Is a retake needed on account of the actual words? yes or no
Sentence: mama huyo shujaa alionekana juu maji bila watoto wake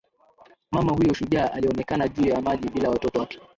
yes